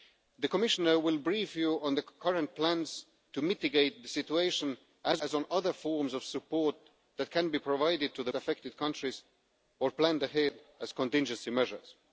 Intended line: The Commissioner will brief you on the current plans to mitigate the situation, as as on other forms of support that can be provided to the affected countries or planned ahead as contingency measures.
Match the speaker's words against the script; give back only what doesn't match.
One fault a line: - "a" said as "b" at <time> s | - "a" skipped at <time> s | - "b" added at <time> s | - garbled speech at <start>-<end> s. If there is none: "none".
none